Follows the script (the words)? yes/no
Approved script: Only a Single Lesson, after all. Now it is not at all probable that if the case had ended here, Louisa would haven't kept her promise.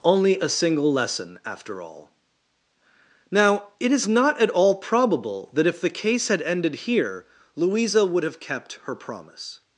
no